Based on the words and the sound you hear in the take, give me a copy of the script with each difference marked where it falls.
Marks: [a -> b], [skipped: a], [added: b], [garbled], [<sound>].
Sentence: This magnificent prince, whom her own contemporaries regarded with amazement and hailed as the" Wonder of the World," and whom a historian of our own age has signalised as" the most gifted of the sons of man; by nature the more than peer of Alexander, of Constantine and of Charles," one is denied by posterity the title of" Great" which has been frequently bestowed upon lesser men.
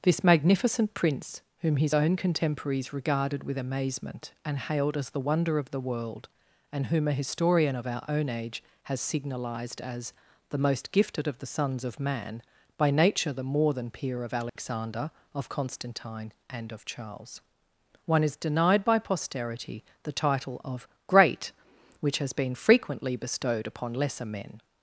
This magnificent prince, whom [her -> his] own contemporaries regarded with amazement and hailed as the" Wonder of the World," and whom a historian of our own age has signalised as" the most gifted of the sons of man; by nature the more than peer of Alexander, [dropout] of Constantine and of Charles," one is denied by posterity the title of" Great" which has been frequently bestowed upon lesser men.